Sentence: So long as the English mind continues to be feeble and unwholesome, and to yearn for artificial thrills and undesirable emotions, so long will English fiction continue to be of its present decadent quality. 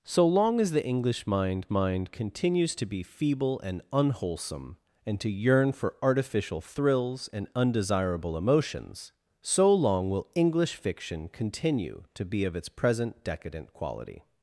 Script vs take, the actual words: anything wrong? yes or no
yes